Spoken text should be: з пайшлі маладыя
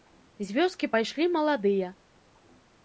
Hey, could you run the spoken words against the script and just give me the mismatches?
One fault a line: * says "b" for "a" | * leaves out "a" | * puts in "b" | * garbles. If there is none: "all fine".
* puts in "вёскі"